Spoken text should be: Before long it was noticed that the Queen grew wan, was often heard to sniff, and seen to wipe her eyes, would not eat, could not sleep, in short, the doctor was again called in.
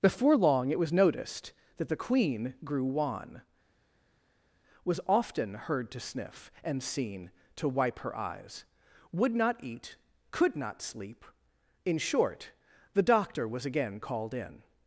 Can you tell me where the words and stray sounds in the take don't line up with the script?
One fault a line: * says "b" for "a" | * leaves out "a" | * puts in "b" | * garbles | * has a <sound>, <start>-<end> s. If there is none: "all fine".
all fine